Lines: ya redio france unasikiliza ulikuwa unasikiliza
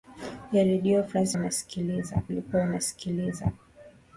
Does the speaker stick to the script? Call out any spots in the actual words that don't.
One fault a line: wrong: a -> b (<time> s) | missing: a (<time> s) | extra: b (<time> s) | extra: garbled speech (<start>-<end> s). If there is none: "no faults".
no faults